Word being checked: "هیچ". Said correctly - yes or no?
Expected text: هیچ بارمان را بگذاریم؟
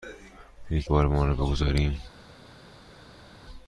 yes